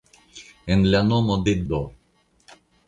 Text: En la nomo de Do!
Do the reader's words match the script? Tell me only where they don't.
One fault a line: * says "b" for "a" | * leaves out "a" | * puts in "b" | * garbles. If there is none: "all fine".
all fine